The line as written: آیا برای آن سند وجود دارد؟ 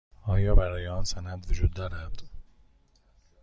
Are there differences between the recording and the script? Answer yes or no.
no